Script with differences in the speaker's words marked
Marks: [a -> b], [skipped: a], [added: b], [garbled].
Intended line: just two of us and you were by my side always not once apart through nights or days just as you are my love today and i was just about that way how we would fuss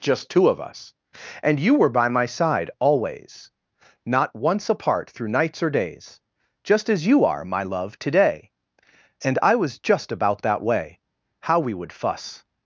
just two of us and you were by my side always not once apart through nights or days just as you are my love today and i was just about that way how we would fuss